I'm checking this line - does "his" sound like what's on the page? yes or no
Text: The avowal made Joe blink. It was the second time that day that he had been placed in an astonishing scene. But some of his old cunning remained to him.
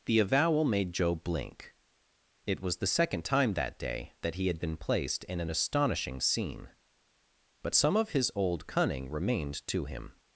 yes